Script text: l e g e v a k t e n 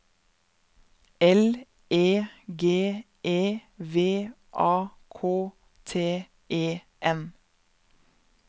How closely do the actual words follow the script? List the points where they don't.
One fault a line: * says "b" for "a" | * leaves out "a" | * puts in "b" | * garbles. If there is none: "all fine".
all fine